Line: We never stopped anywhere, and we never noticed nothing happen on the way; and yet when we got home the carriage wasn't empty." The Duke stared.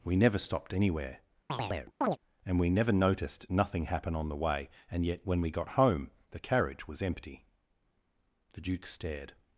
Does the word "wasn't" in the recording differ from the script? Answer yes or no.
yes